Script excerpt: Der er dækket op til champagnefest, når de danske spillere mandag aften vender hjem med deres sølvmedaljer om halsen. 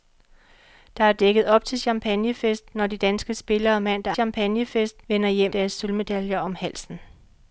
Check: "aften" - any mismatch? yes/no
yes